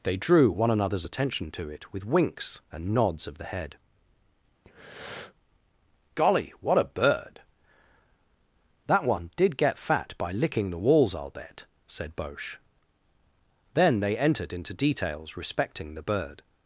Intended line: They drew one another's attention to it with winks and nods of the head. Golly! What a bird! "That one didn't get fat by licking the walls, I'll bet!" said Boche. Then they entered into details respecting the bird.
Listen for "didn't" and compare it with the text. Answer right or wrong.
wrong